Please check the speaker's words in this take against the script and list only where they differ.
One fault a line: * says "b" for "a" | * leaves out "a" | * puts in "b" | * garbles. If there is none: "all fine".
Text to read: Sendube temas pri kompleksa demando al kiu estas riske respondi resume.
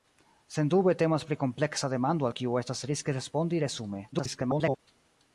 * garbles